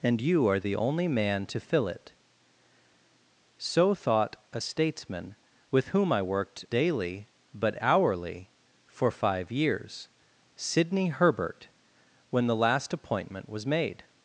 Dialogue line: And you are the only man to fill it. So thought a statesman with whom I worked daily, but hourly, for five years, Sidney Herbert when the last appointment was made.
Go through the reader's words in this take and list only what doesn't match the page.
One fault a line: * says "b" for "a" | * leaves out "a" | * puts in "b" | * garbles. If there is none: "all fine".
all fine